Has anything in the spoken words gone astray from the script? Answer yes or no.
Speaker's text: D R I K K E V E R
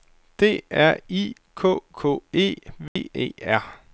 no